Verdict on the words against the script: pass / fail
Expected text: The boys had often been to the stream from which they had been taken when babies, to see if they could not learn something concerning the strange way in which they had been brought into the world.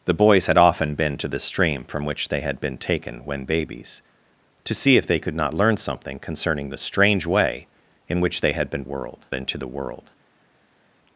fail